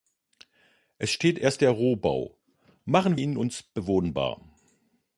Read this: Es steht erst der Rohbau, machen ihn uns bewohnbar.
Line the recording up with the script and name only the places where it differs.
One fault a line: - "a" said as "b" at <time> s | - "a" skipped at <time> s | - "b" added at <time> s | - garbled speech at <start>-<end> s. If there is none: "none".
none